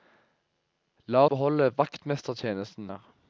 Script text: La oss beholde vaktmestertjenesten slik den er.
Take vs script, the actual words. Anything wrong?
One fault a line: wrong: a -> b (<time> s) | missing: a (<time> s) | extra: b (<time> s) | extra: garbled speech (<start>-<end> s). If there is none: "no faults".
missing: oss (1.2 s)
missing: slik den (2.9 s)